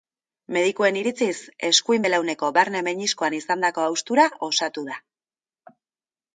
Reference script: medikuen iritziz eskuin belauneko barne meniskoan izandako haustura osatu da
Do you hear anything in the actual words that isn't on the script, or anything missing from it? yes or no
no